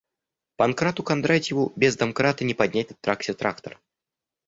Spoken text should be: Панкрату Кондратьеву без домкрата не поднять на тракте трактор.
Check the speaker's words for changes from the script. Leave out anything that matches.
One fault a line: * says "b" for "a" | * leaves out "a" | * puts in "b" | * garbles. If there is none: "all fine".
all fine